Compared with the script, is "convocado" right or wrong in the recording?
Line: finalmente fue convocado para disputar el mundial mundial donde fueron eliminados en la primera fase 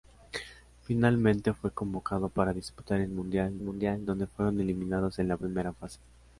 right